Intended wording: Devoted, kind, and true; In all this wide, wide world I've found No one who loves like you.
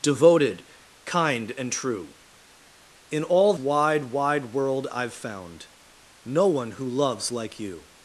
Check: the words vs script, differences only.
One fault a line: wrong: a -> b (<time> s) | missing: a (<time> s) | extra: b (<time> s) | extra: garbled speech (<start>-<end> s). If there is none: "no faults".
missing: this (3.5 s)